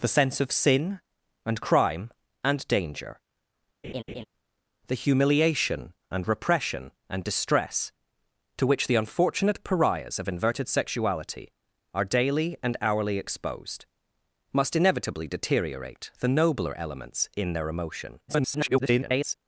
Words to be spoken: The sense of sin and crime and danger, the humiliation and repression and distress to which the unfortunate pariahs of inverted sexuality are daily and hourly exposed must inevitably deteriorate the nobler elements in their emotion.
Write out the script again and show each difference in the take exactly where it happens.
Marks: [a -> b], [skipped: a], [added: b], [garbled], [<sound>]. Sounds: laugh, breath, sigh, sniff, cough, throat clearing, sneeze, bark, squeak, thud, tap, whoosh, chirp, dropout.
The sense of sin and crime and danger, [laugh] the humiliation and repression and distress to which the unfortunate pariahs of inverted sexuality are daily and hourly exposed must inevitably deteriorate the nobler elements in their emotion. [garbled]